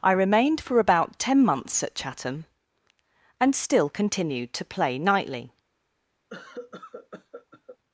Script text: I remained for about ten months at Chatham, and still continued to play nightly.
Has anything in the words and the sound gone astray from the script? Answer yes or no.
yes